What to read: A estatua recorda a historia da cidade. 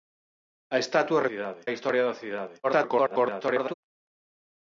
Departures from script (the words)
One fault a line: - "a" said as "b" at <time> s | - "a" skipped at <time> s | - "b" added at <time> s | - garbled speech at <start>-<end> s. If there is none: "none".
- "recorda" said as "cidade" at 1.3 s
- garbled speech at 2.6-3.7 s